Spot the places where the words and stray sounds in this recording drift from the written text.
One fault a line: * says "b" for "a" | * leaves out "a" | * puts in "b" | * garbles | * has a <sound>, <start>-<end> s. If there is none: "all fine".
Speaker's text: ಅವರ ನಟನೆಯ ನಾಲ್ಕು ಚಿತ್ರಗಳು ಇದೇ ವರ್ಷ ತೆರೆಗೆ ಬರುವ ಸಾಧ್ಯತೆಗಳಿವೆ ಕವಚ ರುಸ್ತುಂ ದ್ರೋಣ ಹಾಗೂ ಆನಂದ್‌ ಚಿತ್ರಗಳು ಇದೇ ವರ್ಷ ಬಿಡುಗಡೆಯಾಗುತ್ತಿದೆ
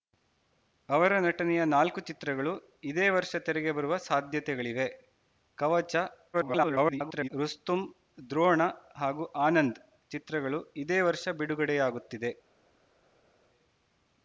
* garbles